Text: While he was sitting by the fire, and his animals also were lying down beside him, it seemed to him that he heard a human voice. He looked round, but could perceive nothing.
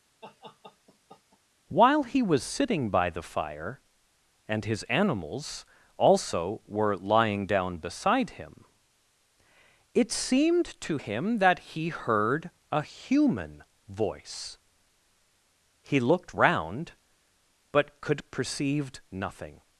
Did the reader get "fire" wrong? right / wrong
right